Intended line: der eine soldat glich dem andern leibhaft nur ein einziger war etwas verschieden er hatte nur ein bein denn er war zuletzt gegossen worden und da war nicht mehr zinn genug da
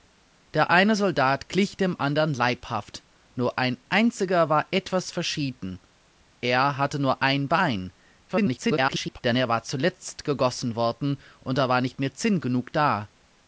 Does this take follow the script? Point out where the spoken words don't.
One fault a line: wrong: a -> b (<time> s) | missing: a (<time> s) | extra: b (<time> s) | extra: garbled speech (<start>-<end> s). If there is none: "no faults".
extra: garbled speech (8.3-9.2 s)